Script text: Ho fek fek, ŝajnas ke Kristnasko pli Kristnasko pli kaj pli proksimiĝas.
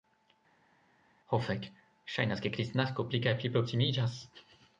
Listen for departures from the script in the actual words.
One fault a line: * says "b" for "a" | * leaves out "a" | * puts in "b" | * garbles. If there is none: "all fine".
* leaves out "fek"
* leaves out "Kristnasko pli"